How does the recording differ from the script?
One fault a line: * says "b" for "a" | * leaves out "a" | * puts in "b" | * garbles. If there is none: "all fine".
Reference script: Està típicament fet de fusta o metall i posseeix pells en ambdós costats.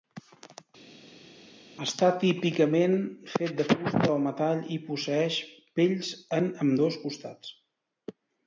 all fine